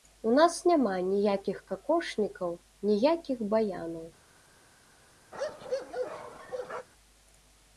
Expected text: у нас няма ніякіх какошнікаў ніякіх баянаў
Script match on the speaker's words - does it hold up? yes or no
yes